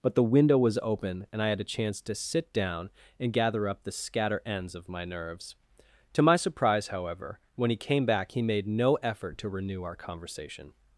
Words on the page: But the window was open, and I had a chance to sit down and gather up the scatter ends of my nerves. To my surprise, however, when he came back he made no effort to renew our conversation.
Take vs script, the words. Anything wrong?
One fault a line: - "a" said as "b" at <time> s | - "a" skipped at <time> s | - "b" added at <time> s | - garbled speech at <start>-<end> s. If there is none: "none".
none